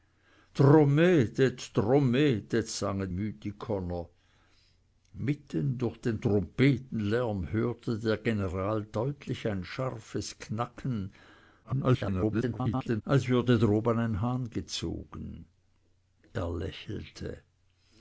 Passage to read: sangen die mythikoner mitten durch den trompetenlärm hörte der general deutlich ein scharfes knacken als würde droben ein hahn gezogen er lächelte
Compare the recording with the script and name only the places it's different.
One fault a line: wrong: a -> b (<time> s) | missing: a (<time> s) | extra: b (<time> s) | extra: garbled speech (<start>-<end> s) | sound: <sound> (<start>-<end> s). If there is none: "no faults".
missing: die (3.1 s)
extra: garbled speech (11.6-13.0 s)